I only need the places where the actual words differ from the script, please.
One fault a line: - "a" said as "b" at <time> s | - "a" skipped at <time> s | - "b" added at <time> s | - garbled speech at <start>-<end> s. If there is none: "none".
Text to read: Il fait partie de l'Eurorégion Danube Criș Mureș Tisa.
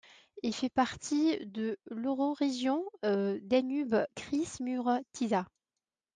none